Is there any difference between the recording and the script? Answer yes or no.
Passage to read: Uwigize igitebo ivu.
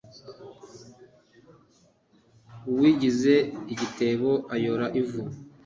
yes